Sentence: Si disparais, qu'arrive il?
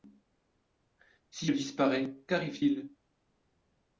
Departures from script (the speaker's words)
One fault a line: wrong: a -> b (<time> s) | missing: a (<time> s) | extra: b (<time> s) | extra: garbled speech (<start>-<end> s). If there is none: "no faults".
no faults